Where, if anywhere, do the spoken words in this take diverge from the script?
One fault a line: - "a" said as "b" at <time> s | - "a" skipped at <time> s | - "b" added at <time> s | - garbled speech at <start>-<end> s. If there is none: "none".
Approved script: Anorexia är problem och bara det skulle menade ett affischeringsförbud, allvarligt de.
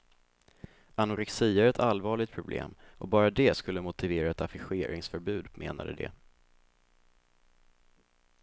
- "ett allvarligt" added at 1.7 s
- "menade" said as "motivera" at 3.8 s
- "allvarligt" said as "menade" at 5.5 s